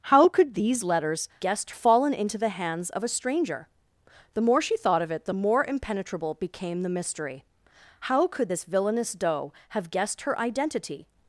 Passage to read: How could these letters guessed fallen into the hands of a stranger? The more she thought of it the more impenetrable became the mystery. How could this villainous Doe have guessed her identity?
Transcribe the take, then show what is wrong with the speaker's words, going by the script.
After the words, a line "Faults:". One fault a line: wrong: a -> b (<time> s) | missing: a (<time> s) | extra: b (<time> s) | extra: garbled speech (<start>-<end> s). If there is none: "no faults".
How could these letters guessed fallen into the hands of a stranger? The more she thought of it the more impenetrable became the mystery. How could this villainous Doe have guessed her identity?
Faults:
no faults